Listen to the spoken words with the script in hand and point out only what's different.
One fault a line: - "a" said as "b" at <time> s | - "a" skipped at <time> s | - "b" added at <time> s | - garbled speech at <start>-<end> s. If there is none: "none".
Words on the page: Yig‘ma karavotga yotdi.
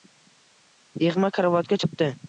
none